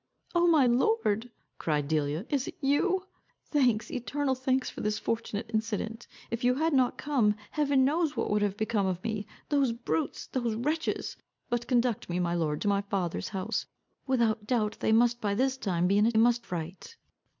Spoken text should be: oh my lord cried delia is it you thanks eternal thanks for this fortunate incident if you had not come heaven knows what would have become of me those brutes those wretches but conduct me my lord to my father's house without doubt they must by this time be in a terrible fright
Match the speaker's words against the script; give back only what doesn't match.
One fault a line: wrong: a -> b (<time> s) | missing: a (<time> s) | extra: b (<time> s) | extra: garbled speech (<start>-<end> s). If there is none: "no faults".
wrong: terrible -> must (16.2 s)